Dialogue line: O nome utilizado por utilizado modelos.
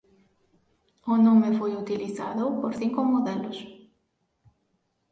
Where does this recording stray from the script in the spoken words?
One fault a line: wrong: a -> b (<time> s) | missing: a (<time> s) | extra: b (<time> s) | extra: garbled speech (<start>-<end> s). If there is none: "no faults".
extra: foi (1.6 s)
wrong: utilizado -> cinco (2.8 s)